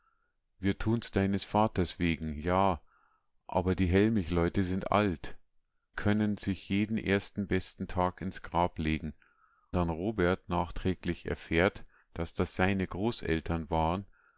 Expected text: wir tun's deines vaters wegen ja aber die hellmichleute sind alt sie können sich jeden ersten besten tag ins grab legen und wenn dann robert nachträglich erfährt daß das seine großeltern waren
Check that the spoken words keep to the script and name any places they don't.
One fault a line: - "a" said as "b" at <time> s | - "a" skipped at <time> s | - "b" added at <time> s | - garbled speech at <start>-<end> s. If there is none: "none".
- "sie" skipped at 5.4 s
- "und wenn" skipped at 9.1 s